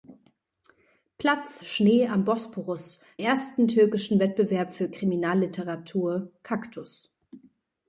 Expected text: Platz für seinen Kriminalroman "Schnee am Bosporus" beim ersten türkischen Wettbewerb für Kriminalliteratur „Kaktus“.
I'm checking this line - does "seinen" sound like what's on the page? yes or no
no